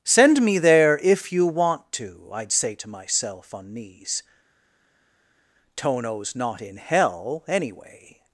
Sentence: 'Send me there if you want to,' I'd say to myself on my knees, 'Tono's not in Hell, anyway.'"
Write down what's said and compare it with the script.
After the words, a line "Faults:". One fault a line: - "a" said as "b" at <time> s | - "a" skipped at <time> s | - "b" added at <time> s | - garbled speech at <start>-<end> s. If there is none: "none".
'Send me there if you want to,' I'd say to myself on knees, 'Tono's not in Hell, anyway.'"
Faults:
- "my" skipped at 3.7 s